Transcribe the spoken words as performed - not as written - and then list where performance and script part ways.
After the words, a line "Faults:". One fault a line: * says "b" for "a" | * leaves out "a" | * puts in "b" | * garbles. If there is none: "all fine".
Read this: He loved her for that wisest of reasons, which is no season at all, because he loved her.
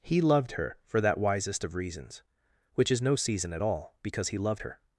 He loved her for that wisest of reasons, which is no season at all, because he loved her.
Faults:
all fine